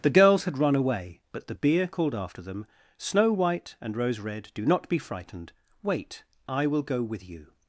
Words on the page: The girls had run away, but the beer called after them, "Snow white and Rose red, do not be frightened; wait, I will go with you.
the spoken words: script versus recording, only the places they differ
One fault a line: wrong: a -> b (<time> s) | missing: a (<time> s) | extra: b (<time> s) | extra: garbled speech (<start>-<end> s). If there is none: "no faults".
no faults